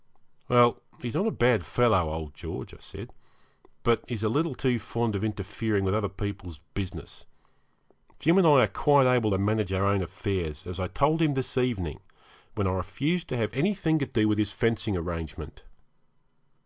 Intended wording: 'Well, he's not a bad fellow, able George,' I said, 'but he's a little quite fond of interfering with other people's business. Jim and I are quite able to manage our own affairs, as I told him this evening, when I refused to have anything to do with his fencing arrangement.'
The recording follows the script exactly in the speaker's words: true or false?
false